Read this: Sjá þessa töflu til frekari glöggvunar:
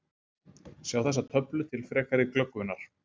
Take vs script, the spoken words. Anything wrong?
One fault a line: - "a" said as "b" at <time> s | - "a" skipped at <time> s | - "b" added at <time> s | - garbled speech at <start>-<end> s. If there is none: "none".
none